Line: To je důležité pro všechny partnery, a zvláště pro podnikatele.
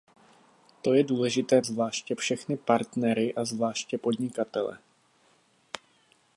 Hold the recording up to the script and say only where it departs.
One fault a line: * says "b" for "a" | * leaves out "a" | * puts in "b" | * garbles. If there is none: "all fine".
* says "zvláště" for "pro"
* leaves out "pro"